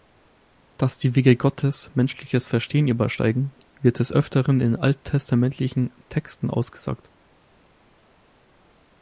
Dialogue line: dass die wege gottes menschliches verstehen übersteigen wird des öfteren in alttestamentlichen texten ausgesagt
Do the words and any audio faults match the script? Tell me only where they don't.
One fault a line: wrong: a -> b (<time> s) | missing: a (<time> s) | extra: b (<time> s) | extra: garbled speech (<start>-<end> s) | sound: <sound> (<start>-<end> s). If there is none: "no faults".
no faults